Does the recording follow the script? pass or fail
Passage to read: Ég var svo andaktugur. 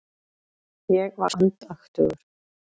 fail